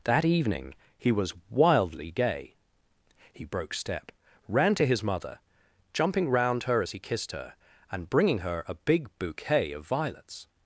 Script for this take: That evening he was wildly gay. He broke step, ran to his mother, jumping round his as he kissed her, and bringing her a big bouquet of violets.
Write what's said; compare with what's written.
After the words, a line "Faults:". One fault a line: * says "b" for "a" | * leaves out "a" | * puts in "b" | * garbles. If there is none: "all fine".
That evening he was wildly gay. He broke step, ran to his mother, jumping round her as he kissed her, and bringing her a big bouquet of violets.
Faults:
* says "her" for "his"